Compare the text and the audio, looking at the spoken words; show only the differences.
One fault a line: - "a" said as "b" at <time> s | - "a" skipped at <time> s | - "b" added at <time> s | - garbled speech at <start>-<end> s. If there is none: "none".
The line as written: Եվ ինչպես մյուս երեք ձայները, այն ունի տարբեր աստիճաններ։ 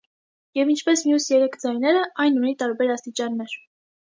none